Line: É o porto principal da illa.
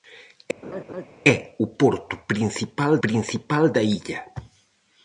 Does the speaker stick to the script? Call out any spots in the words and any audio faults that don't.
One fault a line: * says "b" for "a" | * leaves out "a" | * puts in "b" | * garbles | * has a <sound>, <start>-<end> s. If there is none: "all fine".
* has a laugh, 0.6-1.1 s
* puts in "principal"